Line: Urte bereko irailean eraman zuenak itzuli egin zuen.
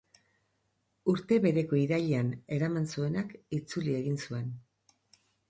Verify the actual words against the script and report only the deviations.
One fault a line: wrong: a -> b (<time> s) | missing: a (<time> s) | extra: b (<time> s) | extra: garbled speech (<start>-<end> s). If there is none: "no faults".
no faults